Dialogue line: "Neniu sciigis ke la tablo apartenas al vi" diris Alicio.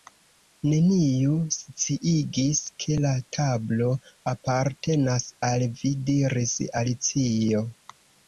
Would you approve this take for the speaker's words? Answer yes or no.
yes